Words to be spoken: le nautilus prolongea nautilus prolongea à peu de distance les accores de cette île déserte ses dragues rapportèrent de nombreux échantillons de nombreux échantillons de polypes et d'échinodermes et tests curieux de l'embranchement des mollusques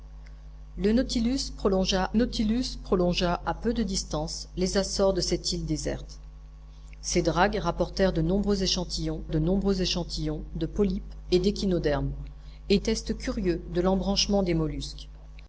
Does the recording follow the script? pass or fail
pass